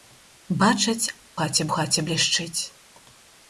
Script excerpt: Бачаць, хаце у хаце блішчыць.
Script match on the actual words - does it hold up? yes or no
yes